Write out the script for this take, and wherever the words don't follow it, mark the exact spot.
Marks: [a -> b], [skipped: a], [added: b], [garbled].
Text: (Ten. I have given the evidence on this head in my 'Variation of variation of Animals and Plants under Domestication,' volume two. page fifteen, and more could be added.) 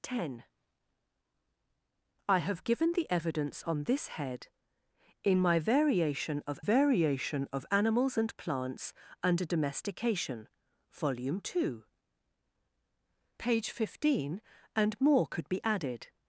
(Ten. I have given the evidence on this head in my 'Variation of variation of Animals and Plants under Domestication,' volume two. page fifteen, and more could be added.)